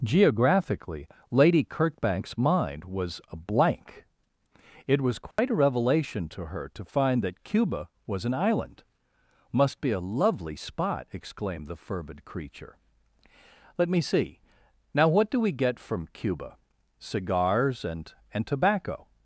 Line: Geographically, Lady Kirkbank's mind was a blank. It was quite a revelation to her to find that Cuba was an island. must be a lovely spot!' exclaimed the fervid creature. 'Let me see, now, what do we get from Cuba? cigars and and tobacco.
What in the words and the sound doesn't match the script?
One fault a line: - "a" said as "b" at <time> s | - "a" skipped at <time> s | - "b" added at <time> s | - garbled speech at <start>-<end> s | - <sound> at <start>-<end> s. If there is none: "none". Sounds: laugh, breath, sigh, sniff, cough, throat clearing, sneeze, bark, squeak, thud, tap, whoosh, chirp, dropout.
- dropout at 5.3-5.4 s